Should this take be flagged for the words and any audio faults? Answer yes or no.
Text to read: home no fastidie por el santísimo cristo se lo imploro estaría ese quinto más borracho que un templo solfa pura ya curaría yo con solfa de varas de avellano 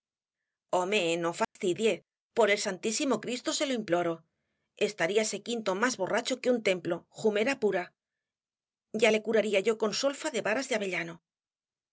yes